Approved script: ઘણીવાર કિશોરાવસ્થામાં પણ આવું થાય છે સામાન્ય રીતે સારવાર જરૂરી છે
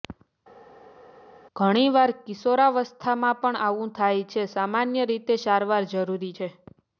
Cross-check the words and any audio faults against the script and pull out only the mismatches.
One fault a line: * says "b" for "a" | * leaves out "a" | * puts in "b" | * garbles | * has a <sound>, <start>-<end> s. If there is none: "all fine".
all fine